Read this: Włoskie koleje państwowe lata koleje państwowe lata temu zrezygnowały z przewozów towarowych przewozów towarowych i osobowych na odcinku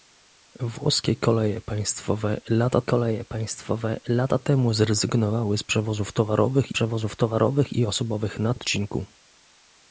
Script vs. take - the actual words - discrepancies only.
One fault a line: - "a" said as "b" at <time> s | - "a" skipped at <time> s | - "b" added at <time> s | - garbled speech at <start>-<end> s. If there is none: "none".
none